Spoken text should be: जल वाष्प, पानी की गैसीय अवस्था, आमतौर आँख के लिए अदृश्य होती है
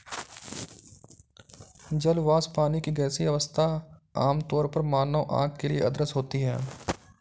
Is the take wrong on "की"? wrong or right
right